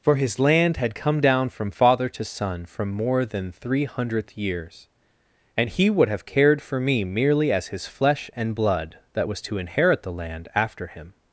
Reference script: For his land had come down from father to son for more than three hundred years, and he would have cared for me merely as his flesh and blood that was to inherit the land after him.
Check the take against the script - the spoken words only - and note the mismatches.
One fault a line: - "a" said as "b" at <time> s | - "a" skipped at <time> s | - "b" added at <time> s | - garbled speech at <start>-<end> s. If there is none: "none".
- "for" said as "from" at 2.6 s
- "hundred" said as "hundredth" at 3.9 s